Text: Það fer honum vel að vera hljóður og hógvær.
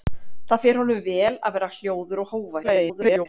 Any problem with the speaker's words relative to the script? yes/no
yes